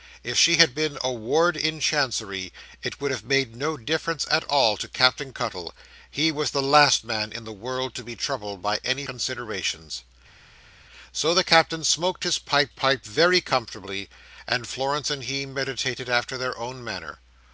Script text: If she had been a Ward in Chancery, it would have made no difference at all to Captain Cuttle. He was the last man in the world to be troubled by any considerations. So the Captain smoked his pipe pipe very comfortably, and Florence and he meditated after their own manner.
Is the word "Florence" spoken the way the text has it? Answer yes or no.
yes